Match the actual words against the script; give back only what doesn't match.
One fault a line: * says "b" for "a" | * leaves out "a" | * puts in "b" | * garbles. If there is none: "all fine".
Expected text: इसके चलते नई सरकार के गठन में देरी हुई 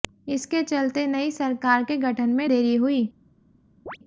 all fine